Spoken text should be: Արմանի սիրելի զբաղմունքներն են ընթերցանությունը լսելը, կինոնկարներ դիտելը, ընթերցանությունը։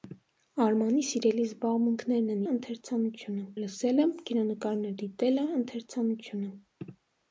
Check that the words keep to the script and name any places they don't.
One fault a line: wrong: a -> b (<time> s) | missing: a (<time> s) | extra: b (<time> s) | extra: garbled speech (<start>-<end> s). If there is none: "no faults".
no faults